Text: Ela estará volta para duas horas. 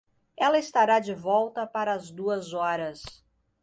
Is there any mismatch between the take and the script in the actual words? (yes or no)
yes